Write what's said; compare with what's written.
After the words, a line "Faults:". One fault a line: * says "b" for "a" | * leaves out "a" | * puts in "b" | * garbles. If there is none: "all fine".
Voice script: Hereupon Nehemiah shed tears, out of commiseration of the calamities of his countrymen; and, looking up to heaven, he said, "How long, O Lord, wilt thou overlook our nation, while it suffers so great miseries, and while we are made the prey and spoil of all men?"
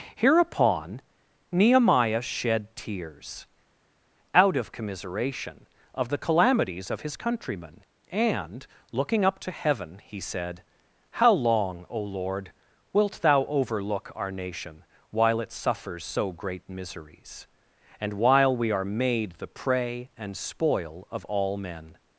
Hereupon Nehemiah shed tears, out of commiseration of the calamities of his countrymen; and, looking up to heaven, he said, "How long, O Lord, wilt thou overlook our nation, while it suffers so great miseries, and while we are made the prey and spoil of all men?"
Faults:
all fine